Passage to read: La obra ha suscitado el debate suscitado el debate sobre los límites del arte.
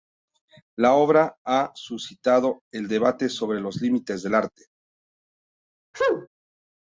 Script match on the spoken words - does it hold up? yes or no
no